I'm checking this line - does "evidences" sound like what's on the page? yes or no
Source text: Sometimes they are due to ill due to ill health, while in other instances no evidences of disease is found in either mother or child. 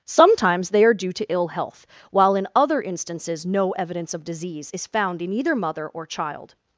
no